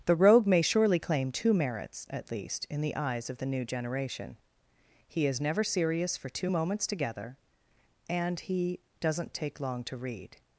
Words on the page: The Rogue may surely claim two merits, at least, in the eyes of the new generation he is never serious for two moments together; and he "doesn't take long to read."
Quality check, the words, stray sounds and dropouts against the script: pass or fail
pass